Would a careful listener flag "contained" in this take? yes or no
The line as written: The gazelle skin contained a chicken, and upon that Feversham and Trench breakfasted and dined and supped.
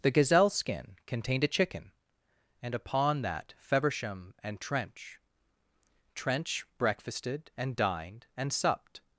no